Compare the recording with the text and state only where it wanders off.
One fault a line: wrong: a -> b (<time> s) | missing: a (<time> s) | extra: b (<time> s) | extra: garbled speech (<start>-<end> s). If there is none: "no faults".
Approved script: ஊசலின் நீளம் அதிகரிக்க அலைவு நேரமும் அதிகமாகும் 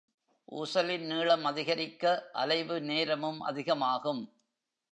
no faults